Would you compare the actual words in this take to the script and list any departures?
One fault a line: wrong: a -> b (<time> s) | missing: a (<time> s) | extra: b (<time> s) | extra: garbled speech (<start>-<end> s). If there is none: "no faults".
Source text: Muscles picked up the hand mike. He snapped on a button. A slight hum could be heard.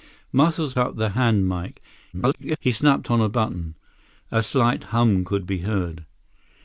missing: picked (0.7 s)
extra: garbled speech (2.1-2.6 s)